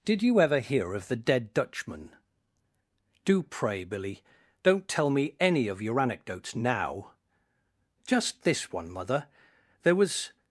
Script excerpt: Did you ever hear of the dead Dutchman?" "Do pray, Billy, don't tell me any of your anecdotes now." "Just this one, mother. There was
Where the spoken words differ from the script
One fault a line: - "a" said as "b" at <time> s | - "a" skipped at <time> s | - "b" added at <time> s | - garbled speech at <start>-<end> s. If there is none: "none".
none